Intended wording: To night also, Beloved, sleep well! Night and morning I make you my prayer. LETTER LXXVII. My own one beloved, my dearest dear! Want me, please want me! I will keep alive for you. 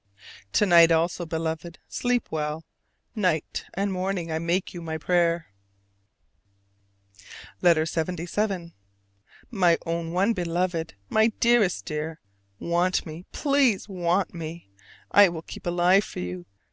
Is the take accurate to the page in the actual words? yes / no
yes